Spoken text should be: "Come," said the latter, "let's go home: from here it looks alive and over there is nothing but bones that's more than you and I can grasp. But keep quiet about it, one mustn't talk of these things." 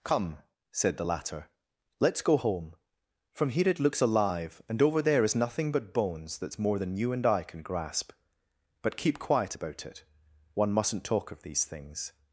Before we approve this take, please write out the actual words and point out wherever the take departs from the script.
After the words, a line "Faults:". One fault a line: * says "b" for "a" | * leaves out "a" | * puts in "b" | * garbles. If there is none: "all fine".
"Come," said the latter, "let's go home: from here it looks alive and over there is nothing but bones that's more than you and I can grasp. But keep quiet about it, one mustn't talk of these things."
Faults:
all fine